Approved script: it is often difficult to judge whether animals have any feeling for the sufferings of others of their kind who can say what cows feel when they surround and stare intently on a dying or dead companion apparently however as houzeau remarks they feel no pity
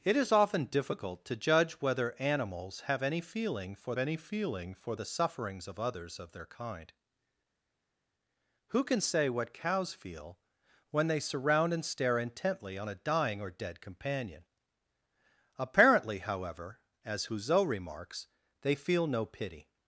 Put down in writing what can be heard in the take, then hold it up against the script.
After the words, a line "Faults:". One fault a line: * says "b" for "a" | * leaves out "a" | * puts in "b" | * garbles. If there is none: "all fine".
it is often difficult to judge whether animals have any feeling for any feeling for the sufferings of others of their kind who can say what cows feel when they surround and stare intently on a dying or dead companion apparently however as houzeau remarks they feel no pity
Faults:
* puts in "any feeling for"